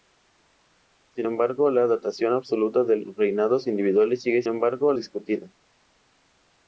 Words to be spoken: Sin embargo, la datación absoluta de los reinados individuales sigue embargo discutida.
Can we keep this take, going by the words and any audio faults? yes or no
yes